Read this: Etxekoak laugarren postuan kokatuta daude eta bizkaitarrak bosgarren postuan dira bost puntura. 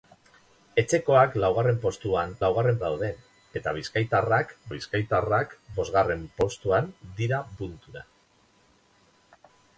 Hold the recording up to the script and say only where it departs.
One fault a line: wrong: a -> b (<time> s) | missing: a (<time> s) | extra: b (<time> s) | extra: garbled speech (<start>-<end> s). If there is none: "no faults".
wrong: kokatuta -> laugarren (2.4 s)
extra: bizkaitarrak (4.7 s)
missing: bost (7.4 s)